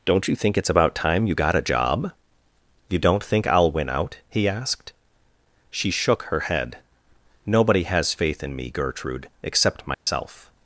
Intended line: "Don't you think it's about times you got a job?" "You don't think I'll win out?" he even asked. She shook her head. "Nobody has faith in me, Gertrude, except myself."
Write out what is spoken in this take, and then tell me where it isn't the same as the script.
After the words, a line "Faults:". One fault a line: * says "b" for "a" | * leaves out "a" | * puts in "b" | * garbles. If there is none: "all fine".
"Don't you think it's about time you got a job?" "You don't think I'll win out?" he asked. She shook her head. "Nobody has faith in me, Gertrude, except myself."
Faults:
* says "time" for "times"
* leaves out "even"